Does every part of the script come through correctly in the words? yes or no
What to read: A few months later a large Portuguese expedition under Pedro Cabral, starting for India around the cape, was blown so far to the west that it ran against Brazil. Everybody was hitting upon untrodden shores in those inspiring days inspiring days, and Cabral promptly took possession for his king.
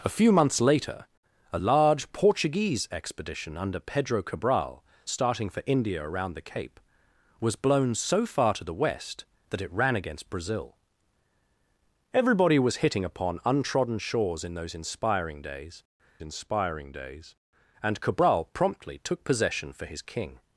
yes